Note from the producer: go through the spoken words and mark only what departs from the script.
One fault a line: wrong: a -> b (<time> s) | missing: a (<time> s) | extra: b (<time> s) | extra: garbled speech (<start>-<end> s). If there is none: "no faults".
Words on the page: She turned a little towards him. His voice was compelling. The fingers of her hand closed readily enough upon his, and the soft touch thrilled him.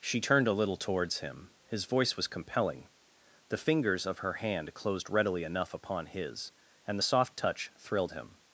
no faults